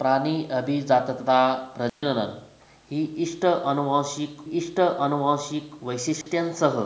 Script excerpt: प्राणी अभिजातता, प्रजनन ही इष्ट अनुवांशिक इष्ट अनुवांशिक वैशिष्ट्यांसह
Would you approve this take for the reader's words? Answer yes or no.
yes